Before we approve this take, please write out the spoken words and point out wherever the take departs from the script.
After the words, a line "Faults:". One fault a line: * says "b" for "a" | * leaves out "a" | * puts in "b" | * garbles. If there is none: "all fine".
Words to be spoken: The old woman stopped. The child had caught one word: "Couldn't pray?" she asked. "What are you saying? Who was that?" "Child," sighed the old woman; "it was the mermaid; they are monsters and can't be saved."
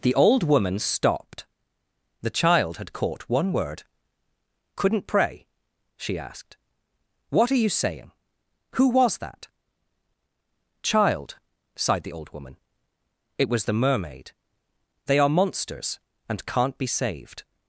The old woman stopped. The child had caught one word: "Couldn't pray?" she asked. "What are you saying? Who was that?" "Child," sighed the old woman; "it was the mermaid; they are monsters and can't be saved."
Faults:
all fine